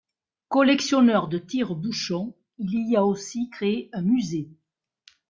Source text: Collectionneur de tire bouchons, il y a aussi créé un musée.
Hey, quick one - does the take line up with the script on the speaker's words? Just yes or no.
yes